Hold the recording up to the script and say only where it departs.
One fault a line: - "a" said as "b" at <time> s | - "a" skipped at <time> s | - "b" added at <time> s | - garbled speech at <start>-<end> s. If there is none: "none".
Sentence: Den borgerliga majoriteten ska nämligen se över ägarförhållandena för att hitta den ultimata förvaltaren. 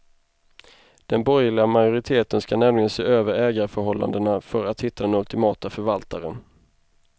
none